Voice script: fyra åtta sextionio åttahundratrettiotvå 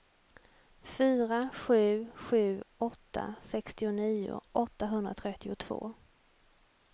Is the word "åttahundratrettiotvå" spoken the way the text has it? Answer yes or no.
yes